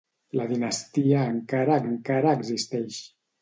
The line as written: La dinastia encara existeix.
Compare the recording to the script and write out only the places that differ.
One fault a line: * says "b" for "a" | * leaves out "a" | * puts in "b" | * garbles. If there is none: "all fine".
* puts in "encara"